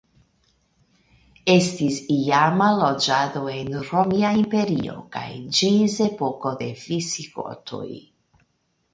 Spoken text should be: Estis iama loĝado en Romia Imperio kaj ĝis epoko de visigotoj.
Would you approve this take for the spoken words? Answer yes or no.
yes